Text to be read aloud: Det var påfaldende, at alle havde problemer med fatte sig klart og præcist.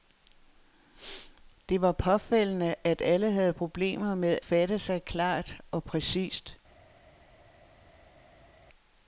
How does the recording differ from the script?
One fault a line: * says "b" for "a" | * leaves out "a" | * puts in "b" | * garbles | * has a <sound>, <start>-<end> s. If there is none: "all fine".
all fine